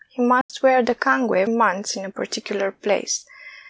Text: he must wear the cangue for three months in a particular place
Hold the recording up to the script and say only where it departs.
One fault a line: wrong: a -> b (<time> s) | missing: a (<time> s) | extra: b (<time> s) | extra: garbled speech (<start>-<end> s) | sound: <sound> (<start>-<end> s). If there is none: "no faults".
sound: dropout (0.4-0.5 s)
missing: for three (1.5 s)